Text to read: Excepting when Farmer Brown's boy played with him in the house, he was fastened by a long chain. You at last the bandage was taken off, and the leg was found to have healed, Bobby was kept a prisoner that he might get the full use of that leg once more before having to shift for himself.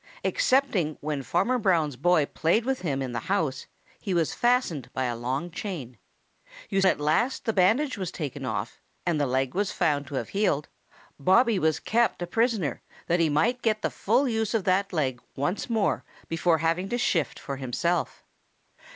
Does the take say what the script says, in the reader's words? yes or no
yes